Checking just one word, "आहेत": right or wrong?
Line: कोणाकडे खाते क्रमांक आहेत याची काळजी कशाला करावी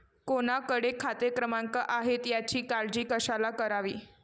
right